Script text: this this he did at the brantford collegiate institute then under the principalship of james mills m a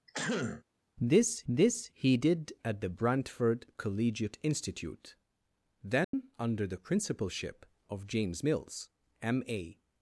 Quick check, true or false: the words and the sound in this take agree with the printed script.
false